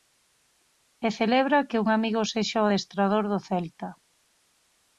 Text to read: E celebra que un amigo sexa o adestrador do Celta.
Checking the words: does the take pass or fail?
pass